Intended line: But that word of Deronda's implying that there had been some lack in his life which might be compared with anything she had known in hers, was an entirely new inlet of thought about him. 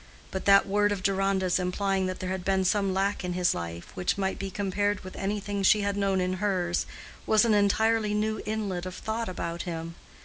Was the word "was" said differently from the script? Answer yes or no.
no